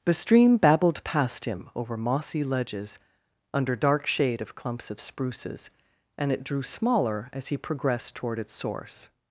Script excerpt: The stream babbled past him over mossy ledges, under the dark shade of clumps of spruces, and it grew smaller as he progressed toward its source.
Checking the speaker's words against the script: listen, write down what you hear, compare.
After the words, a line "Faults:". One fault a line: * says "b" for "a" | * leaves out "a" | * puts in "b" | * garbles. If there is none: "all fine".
The stream babbled past him over mossy ledges, under dark shade of clumps of spruces, and it drew smaller as he progressed toward its source.
Faults:
* leaves out "the"
* says "drew" for "grew"